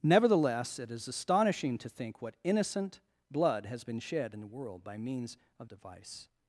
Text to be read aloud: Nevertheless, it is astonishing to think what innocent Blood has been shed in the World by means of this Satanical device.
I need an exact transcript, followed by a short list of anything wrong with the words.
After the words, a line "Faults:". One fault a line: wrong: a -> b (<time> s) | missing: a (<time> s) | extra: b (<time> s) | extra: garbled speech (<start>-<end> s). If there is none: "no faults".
Nevertheless, it is astonishing to think what innocent Blood has been shed in the World by means of device.
Faults:
missing: this Satanical (5.7 s)